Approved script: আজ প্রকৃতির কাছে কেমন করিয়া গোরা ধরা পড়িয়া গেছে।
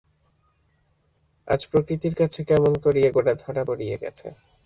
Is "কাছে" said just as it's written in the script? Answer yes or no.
yes